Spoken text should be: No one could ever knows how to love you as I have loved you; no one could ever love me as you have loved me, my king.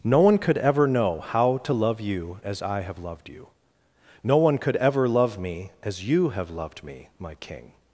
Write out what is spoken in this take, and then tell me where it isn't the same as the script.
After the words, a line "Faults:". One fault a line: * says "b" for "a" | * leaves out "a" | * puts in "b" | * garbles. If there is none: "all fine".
No one could ever know how to love you as I have loved you; no one could ever love me as you have loved me, my king.
Faults:
* says "know" for "knows"